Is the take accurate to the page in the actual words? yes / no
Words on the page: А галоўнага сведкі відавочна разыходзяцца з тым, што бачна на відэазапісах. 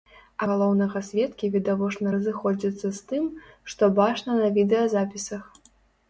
yes